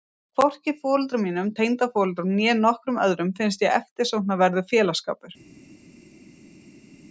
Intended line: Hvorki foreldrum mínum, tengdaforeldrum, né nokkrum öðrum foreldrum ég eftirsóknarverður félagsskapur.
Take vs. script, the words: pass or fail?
fail